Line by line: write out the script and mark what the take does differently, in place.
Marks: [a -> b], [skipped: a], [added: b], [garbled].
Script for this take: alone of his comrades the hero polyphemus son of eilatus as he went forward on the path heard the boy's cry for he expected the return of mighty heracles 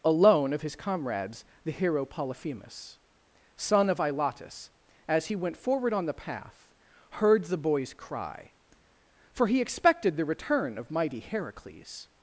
alone of his comrades the hero polyphemus son of eilatus as he went forward on the path heard the boy's cry for he expected the return of mighty heracles